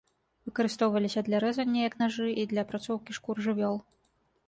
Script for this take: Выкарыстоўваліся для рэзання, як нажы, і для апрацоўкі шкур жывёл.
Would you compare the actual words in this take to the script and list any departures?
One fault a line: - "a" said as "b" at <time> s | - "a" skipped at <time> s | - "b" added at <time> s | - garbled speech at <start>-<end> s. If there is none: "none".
none